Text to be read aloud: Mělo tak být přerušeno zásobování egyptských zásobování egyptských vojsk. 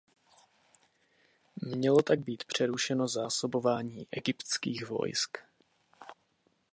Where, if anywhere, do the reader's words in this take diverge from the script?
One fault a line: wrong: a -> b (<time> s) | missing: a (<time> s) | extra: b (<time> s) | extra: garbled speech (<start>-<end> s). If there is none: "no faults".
missing: zásobování egyptských (4.9 s)